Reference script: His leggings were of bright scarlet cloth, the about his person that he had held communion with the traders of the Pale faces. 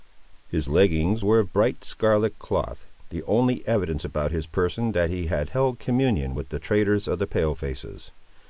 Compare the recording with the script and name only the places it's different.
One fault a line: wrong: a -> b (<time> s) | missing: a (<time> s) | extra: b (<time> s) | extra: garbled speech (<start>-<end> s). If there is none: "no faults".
extra: only evidence (3.2 s)